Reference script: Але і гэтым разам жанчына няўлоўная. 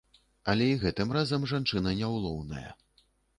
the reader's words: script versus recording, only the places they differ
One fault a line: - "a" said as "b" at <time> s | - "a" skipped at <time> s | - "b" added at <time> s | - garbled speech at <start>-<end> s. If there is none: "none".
none